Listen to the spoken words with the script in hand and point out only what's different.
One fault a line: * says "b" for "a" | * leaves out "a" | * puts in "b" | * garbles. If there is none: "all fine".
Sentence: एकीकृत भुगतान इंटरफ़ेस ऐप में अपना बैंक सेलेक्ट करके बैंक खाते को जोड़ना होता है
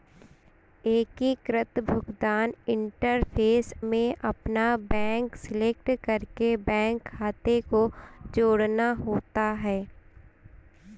* leaves out "ऐप"